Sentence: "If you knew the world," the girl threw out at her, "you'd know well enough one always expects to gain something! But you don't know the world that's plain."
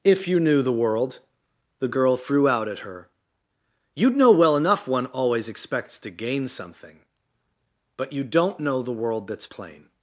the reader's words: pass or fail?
pass